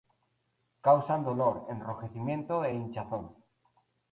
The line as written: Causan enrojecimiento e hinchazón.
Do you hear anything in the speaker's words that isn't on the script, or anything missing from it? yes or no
yes